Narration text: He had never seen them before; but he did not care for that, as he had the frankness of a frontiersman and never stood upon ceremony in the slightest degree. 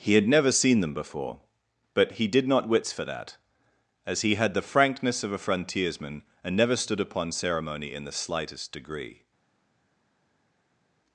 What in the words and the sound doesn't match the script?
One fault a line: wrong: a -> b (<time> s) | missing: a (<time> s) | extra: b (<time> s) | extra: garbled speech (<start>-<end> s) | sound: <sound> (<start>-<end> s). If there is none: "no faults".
wrong: care -> wits (2.7 s)